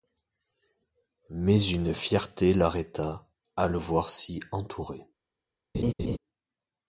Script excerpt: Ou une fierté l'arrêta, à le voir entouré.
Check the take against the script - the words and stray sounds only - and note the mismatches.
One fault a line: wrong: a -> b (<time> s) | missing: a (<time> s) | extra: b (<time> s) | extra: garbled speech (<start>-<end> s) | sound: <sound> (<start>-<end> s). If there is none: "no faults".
wrong: Ou -> Mais (1.3 s)
extra: si (4.1 s)
sound: laugh (5.7-6.2 s)